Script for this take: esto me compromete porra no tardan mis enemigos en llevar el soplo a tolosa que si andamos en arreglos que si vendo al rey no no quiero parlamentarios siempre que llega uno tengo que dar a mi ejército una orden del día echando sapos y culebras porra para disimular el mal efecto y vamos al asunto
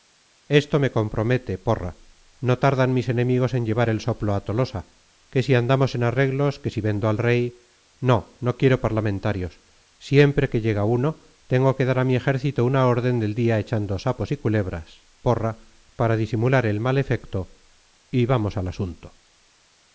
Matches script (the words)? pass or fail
pass